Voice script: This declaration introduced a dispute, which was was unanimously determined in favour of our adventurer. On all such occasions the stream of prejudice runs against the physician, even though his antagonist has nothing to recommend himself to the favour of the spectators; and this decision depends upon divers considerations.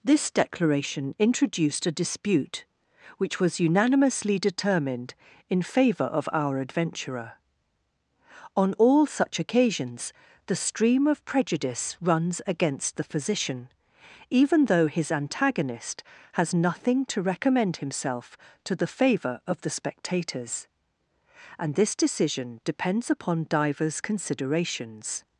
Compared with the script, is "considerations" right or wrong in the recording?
right